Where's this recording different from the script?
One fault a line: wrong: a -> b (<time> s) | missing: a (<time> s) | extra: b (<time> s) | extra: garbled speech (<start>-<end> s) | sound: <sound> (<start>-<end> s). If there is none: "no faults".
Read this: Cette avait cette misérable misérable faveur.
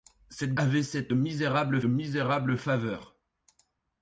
no faults